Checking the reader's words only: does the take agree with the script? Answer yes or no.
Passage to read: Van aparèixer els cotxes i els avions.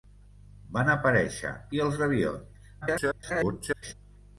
no